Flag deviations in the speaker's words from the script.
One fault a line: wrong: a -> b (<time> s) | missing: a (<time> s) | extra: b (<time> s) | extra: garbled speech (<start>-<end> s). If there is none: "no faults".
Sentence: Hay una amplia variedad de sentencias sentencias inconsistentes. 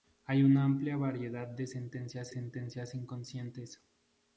no faults